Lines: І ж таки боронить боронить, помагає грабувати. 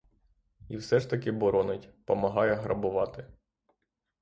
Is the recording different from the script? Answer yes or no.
yes